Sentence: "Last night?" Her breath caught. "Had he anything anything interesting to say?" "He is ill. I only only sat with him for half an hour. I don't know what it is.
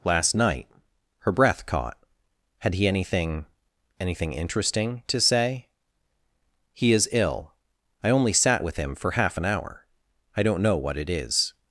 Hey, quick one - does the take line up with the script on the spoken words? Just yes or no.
no